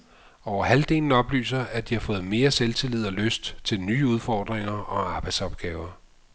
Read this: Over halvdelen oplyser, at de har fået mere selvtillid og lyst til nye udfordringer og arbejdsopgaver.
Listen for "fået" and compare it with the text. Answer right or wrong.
right